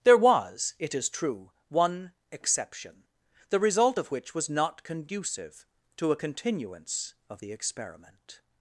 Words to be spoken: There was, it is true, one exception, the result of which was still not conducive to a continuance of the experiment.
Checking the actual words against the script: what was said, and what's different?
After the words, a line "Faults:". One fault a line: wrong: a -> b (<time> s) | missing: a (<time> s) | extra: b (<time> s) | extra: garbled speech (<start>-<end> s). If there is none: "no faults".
There was, it is true, one exception, the result of which was not conducive to a continuance of the experiment.
Faults:
missing: still (4.5 s)